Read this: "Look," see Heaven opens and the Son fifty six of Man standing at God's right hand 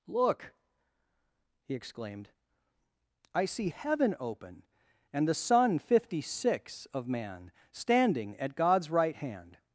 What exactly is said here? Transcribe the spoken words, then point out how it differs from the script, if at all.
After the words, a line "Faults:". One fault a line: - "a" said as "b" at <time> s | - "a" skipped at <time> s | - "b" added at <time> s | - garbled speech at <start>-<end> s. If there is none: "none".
"Look," he exclaimed, "I see Heaven open and the Son fifty six of Man standing at God's right hand
Faults:
- "he exclaimed I" added at 1.6 s
- "opens" said as "open" at 4.2 s